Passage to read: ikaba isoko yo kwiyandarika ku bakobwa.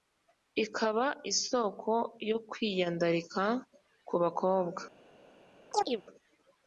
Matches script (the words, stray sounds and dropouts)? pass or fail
fail